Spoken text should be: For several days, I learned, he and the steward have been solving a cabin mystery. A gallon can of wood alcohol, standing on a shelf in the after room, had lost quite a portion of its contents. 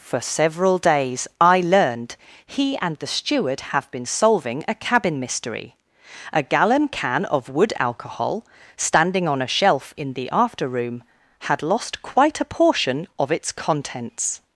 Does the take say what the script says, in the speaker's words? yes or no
yes